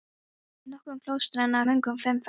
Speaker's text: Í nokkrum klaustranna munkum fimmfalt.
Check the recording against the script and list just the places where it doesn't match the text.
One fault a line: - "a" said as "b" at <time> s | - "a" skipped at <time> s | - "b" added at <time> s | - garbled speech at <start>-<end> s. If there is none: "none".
none